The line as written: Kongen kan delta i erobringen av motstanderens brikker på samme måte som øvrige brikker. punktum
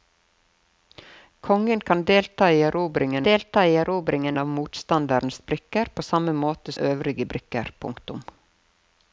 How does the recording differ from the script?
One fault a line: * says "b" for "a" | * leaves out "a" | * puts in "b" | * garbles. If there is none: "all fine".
* puts in "delta i erobringen"
* leaves out "som"